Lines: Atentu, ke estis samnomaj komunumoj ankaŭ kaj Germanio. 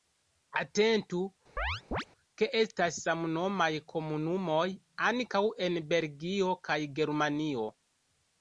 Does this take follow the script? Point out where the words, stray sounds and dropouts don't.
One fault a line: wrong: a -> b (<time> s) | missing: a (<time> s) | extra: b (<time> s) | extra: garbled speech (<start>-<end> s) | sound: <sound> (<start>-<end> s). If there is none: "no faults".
sound: chirp (1.6-2.0 s)
wrong: estis -> estas (2.6 s)
extra: en Belgio (5.7 s)